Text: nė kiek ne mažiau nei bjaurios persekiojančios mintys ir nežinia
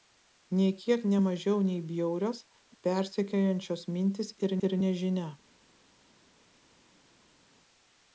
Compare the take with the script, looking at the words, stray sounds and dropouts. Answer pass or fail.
fail